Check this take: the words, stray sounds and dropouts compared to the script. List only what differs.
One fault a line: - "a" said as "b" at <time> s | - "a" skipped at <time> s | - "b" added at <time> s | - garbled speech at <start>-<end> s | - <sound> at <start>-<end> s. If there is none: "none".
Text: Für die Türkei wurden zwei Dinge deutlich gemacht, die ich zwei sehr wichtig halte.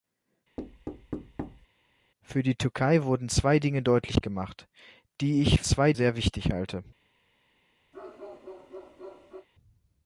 - thud at 0.6-1.7 s
- bark at 7.9-9.5 s